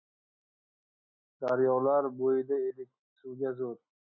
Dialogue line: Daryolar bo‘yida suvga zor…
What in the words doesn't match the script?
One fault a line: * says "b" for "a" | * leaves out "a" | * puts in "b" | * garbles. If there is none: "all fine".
* puts in "edik"